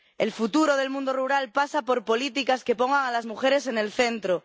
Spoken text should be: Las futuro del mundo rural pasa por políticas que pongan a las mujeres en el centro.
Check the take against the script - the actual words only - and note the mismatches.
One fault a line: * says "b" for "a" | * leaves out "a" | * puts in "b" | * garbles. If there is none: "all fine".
* says "El" for "Las"